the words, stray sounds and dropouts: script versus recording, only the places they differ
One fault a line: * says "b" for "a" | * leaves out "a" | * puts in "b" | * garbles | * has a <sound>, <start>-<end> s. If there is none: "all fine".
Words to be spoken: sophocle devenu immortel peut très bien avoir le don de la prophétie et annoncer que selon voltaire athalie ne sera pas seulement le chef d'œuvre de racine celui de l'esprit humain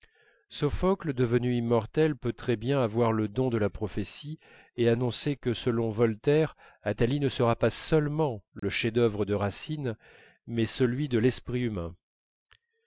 * has a dropout, 8.6-8.6 s
* puts in "mais"